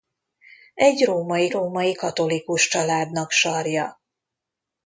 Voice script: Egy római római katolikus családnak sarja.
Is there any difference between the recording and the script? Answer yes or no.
no